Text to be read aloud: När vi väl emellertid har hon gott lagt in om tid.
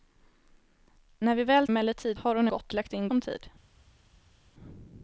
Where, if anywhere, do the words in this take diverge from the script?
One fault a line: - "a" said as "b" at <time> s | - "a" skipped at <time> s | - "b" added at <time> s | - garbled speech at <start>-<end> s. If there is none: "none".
none